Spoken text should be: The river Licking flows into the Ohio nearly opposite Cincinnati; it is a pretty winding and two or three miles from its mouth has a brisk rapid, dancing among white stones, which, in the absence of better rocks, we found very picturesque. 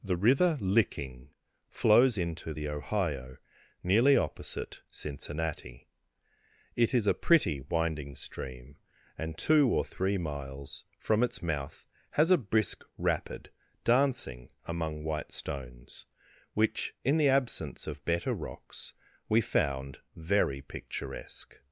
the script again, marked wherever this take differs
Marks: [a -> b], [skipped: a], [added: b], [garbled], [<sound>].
The river Licking flows into the Ohio nearly opposite Cincinnati; it is a pretty winding [added: stream] and two or three miles from its mouth has a brisk rapid, dancing among white stones, which, in the absence of better rocks, we found very picturesque.